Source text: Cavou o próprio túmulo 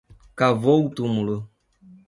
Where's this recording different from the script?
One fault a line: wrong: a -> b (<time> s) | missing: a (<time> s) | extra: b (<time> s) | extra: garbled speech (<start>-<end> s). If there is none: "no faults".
missing: próprio (0.9 s)